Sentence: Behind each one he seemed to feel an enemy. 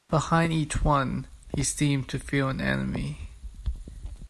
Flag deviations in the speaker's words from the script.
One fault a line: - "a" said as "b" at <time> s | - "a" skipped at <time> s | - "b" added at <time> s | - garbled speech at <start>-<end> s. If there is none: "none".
none